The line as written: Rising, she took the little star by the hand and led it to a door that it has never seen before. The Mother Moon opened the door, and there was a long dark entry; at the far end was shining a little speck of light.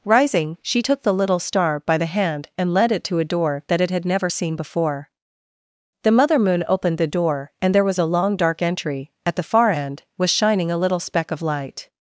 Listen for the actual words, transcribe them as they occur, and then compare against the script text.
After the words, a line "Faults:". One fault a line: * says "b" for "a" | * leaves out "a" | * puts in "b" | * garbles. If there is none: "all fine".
Rising, she took the little star by the hand and led it to a door that it had never seen before. The Mother Moon opened the door, and there was a long dark entry; at the far end was shining a little speck of light.
Faults:
* says "had" for "has"